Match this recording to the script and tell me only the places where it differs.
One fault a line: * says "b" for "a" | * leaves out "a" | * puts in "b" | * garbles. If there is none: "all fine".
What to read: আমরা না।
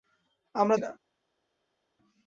all fine